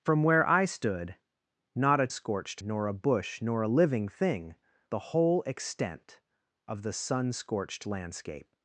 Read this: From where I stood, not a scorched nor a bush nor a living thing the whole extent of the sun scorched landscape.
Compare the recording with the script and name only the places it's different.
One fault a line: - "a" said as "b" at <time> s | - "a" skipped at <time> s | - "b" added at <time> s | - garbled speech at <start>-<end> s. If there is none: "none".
none